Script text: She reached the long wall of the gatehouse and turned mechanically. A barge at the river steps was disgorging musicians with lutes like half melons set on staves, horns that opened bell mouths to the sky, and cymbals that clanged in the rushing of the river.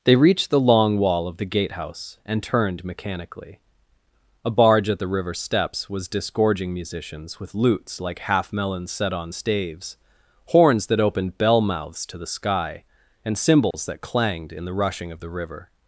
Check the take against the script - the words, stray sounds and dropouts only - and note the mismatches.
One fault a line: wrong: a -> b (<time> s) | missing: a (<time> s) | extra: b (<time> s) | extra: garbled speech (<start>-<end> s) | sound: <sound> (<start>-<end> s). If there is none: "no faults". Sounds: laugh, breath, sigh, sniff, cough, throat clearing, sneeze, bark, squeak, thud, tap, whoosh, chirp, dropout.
wrong: She -> They (0.0 s)
sound: dropout (13.7-13.7 s)